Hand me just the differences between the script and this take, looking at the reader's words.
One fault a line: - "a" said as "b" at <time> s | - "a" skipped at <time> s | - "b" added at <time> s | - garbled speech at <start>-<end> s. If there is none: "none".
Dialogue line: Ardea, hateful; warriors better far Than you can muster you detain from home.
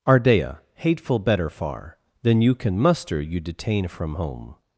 - "warriors" skipped at 1.2 s